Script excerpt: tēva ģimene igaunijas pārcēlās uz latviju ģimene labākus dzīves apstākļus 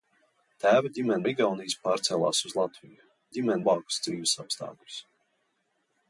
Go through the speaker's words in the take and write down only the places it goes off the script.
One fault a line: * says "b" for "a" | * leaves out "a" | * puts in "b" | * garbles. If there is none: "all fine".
all fine